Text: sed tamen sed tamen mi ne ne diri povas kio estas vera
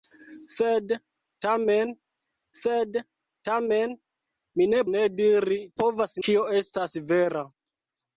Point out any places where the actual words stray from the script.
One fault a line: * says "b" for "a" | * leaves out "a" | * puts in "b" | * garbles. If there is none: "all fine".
all fine